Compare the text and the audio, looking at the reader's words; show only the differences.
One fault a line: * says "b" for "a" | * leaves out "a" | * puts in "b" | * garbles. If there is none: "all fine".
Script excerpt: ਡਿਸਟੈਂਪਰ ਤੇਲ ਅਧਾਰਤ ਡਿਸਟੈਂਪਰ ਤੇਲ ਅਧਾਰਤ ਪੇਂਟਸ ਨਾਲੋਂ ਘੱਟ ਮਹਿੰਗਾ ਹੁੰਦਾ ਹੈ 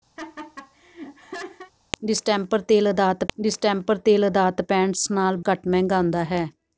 all fine